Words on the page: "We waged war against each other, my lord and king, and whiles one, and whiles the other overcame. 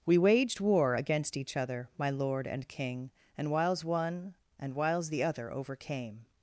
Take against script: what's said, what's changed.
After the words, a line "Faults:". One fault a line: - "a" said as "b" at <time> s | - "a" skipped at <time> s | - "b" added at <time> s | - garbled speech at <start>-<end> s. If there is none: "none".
"We waged war against each other, my lord and king, and whiles one, and whiles the other overcame.
Faults:
none